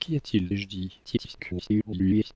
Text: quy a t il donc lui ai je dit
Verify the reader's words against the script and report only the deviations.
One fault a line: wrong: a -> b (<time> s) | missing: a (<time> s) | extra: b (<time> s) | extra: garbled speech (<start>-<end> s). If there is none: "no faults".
missing: donc lui (0.5 s)
extra: garbled speech (1.0-2.4 s)